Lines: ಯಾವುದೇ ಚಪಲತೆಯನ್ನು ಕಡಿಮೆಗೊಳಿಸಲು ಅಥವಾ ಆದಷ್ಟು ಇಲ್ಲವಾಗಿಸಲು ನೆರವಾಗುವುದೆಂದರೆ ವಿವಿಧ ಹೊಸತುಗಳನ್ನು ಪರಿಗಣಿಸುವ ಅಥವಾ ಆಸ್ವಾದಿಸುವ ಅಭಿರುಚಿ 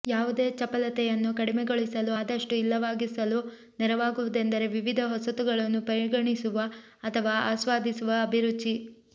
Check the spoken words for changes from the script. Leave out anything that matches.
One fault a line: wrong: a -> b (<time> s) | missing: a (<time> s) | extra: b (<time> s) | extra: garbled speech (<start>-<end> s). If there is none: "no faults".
missing: ಅಥವಾ (2.1 s)